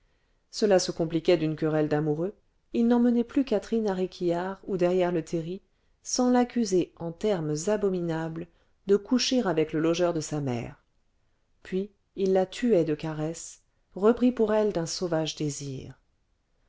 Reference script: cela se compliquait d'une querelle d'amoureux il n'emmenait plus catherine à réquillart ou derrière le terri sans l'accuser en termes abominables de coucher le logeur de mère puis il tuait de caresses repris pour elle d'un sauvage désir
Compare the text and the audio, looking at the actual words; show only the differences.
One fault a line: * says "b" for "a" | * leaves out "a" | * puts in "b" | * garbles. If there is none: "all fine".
* puts in "avec"
* puts in "sa"
* puts in "la"